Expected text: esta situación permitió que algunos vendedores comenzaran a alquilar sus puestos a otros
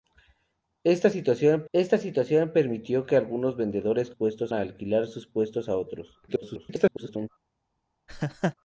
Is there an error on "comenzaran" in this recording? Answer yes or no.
yes